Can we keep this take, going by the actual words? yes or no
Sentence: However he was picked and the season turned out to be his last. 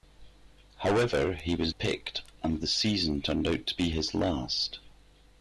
yes